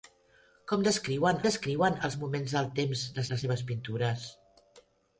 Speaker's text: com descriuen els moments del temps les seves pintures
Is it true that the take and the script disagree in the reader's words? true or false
true